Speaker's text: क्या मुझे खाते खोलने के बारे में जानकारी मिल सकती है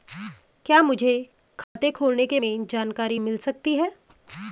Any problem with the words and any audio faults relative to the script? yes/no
yes